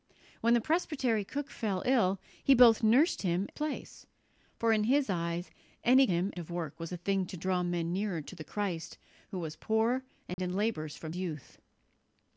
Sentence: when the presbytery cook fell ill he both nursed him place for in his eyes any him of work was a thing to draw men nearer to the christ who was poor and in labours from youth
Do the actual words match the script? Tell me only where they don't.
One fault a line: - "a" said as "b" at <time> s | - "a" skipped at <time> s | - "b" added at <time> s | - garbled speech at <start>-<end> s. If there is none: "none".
none